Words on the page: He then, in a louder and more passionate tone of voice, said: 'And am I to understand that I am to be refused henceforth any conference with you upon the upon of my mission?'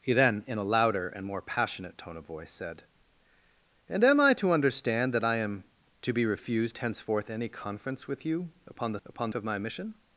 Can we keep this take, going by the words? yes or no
yes